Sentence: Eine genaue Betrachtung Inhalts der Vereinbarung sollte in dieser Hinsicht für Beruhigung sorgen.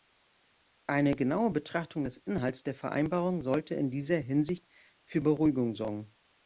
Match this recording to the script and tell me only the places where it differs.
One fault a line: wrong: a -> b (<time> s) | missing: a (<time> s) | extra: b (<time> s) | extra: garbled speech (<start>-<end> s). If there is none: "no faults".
extra: des (2.0 s)